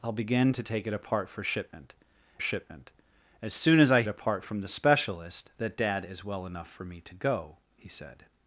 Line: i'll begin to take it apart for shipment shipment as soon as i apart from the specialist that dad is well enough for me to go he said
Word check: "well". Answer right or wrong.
right